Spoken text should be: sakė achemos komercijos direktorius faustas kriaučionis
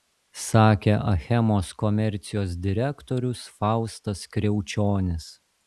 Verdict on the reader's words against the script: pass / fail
pass